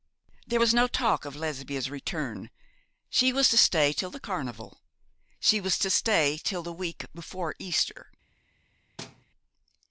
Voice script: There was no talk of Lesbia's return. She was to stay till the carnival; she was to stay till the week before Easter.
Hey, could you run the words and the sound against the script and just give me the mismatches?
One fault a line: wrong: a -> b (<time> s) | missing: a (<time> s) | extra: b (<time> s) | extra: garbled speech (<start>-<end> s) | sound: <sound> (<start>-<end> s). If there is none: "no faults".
sound: thud (9.0-9.2 s)